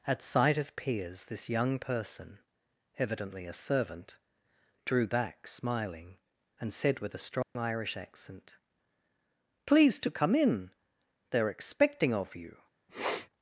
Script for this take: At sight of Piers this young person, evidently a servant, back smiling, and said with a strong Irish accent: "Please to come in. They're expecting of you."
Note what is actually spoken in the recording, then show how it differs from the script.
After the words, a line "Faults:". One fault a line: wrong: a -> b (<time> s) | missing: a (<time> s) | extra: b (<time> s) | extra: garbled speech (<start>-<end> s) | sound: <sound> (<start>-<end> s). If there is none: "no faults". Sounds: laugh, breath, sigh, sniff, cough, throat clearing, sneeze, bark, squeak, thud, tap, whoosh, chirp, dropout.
At sight of Piers this young person, evidently a servant, drew back smiling, and said with a strong Irish accent: "Please to come in. They're expecting of you."
Faults:
extra: drew (4.8 s)
sound: dropout (7.4-7.6 s)
sound: sniff (12.9-13.3 s)